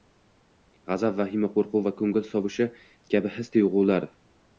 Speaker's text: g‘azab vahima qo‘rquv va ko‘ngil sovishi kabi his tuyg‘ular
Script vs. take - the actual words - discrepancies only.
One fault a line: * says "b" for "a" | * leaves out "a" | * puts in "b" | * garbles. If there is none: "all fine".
all fine